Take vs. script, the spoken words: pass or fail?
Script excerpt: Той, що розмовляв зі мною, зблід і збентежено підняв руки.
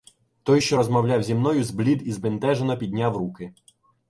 pass